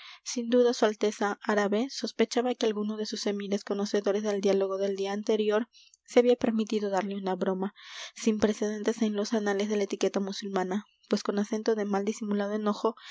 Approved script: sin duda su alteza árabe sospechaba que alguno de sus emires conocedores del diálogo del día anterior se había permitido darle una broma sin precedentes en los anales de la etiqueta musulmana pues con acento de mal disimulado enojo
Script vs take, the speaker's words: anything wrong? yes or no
no